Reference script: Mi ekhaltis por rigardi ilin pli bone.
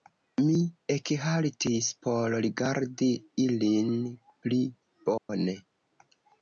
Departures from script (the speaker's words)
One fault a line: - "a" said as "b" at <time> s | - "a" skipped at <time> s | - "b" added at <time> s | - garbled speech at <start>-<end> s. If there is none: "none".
none